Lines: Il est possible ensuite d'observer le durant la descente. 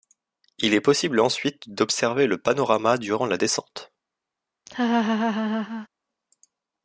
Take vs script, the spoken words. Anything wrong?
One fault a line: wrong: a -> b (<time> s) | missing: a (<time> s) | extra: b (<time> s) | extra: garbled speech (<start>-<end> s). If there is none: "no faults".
extra: panorama (2.4 s)